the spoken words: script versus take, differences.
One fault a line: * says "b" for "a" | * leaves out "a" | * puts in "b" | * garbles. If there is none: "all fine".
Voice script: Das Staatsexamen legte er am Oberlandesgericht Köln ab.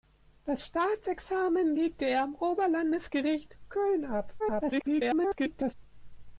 * garbles